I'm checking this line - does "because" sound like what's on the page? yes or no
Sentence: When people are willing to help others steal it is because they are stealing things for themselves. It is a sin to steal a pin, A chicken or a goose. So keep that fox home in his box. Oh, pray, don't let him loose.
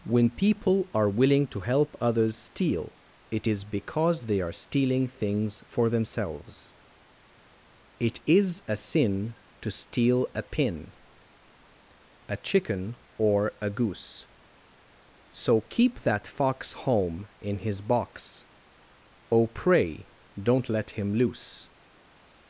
yes